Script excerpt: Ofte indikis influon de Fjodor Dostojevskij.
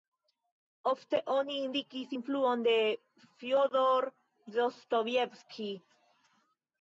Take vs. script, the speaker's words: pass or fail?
fail